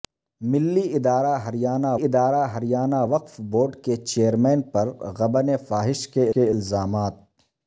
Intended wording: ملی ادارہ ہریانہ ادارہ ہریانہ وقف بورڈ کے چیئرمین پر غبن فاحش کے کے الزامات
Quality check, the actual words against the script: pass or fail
pass